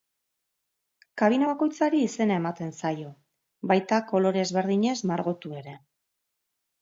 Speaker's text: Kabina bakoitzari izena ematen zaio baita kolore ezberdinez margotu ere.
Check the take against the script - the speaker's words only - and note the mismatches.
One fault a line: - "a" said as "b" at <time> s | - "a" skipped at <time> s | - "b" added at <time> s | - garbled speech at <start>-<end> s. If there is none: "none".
none